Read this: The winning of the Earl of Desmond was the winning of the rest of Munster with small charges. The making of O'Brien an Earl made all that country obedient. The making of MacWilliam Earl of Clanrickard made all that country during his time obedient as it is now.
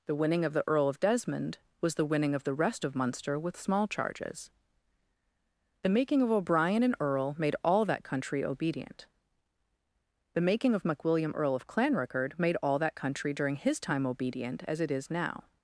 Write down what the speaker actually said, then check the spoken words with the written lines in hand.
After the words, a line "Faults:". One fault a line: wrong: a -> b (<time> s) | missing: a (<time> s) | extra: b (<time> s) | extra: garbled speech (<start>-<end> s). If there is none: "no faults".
The winning of the Earl of Desmond was the winning of the rest of Munster with small charges. The making of O'Brien an Earl made all that country obedient. The making of MacWilliam Earl of Clanrickard made all that country during his time obedient as it is now.
Faults:
no faults